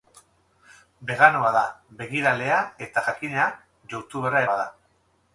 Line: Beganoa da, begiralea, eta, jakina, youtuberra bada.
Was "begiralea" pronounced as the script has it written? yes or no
yes